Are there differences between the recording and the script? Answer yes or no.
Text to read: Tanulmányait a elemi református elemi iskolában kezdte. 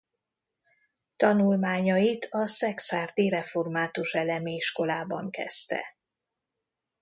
yes